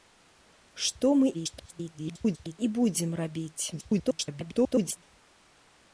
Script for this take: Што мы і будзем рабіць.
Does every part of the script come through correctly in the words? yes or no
no